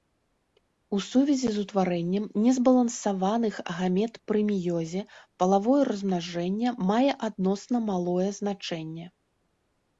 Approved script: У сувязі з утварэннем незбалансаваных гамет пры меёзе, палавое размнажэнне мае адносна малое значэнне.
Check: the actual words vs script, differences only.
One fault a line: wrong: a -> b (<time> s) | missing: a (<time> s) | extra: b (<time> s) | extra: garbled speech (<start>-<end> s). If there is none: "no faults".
no faults